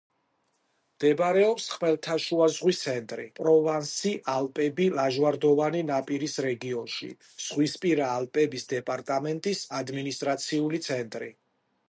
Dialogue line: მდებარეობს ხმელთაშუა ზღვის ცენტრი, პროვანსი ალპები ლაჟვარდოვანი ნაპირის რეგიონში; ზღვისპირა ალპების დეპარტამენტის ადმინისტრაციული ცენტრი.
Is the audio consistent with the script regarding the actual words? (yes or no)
yes